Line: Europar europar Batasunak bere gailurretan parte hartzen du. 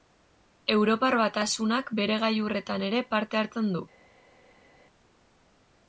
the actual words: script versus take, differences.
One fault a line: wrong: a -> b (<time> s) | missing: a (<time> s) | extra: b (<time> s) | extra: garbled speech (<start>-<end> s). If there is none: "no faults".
missing: europar (1.2 s)
extra: ere (2.9 s)